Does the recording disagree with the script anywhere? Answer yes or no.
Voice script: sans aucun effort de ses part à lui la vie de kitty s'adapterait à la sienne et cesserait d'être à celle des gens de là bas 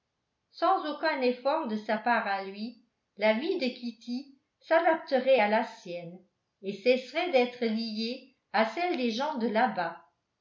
yes